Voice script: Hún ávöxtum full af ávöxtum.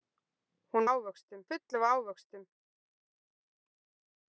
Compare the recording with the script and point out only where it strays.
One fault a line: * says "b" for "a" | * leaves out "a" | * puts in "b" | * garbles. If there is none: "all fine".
all fine